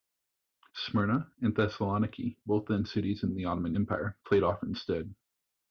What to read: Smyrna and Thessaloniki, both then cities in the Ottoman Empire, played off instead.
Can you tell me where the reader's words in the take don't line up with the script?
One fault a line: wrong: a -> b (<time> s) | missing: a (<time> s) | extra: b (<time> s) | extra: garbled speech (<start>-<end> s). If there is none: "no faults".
no faults